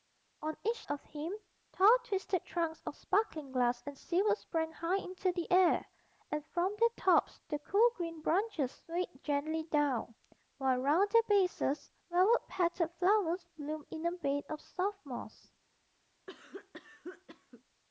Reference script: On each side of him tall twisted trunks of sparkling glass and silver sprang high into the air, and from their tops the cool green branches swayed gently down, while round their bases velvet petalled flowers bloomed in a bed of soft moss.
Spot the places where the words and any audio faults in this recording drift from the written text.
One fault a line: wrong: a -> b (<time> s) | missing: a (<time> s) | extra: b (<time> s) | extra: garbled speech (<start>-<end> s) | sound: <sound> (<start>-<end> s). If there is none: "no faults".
missing: side (0.8 s)
sound: cough (16.3-17.6 s)